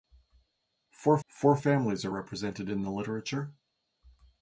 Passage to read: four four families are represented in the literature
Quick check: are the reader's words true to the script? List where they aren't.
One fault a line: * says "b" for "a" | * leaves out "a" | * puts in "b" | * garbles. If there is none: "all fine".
all fine